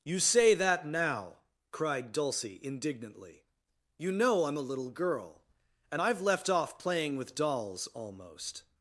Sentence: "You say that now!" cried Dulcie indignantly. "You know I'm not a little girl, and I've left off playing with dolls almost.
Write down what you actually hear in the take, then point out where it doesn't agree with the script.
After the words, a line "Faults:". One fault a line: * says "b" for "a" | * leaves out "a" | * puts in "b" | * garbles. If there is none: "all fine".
"You say that now!" cried Dulcie indignantly. "You know I'm a little girl, and I've left off playing with dolls almost.
Faults:
* leaves out "not"